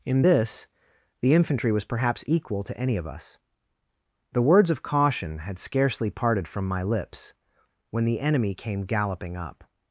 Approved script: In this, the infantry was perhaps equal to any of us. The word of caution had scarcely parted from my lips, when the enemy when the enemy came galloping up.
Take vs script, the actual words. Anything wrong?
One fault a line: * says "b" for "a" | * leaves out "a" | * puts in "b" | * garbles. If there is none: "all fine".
* says "words" for "word"
* leaves out "when the enemy"